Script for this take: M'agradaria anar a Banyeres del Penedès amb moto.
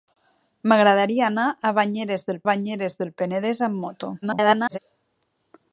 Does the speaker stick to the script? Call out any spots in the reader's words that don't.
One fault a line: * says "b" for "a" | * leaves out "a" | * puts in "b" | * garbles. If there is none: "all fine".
* puts in "Banyeres del"
* garbles